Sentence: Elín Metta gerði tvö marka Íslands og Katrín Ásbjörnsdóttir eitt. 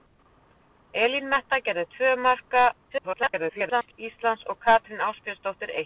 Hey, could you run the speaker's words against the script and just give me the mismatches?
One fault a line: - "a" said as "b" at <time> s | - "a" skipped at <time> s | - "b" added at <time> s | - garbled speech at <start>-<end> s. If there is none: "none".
- garbled speech at 2.9-3.9 s